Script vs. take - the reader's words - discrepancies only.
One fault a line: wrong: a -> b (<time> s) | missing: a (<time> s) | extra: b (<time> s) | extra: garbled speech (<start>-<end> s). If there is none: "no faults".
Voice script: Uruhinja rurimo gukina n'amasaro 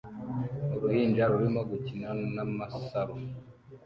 no faults